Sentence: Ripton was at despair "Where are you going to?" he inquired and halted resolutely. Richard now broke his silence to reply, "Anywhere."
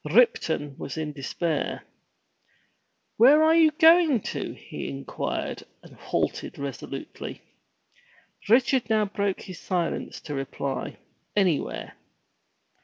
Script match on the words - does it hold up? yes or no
no